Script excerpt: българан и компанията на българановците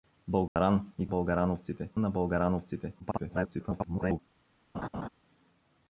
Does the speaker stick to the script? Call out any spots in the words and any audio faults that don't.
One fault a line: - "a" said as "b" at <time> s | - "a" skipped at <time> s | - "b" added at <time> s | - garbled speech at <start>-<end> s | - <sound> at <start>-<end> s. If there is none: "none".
- dropout at 0.5-0.6 s
- "компанията" said as "българановците" at 1.1 s
- garbled speech at 3.0-4.2 s
- laugh at 4.7-5.1 s